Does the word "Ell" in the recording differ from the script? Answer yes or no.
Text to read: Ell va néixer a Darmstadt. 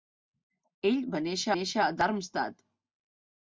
no